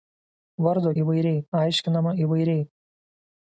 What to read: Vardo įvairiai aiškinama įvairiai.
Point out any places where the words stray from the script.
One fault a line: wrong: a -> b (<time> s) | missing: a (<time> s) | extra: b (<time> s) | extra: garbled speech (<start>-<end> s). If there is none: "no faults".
no faults